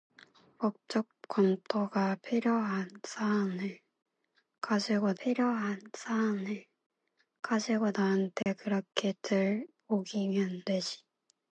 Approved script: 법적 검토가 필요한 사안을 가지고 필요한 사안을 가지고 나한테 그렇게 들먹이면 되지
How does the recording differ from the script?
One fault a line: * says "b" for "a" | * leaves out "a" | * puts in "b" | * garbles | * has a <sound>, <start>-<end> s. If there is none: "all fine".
* has a dropout, 8.4-8.5 s